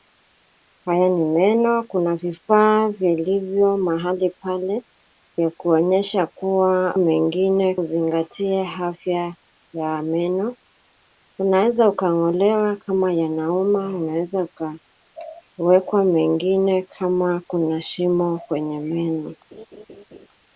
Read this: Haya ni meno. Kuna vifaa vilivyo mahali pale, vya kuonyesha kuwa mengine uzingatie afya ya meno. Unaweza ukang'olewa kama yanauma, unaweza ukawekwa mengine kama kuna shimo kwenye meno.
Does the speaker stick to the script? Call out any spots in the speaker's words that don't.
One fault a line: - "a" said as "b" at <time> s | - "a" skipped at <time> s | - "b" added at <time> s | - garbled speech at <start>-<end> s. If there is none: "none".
none